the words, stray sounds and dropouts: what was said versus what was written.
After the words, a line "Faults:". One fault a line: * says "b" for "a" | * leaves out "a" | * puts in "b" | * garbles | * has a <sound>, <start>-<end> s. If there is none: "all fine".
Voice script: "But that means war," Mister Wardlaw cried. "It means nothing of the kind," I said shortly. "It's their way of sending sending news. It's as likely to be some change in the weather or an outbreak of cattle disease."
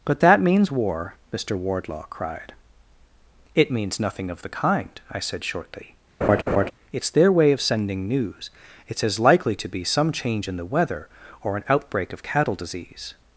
"But that means war," Mister Wardlaw cried. "It means nothing of the kind," I said shortly. "It's their way of sending news. It's as likely to be some change in the weather or an outbreak of cattle disease."
Faults:
* has a laugh, 6.2-6.7 s
* leaves out "sending"